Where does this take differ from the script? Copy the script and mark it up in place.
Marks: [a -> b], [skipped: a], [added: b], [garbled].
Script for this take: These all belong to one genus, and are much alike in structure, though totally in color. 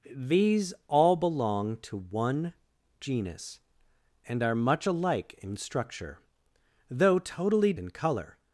These all belong to one genus, and are much alike in structure, though totally in color.